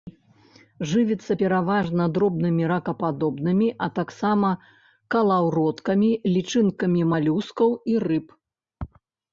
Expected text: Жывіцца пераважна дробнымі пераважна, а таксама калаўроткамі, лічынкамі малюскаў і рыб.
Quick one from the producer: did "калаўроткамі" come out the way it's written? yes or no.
yes